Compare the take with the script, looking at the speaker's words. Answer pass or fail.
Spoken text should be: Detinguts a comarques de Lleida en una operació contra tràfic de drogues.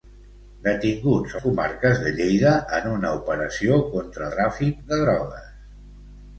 pass